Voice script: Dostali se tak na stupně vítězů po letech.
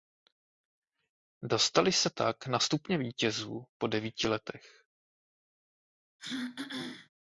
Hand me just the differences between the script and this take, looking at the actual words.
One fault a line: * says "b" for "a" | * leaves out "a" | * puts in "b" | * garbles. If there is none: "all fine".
* puts in "devíti"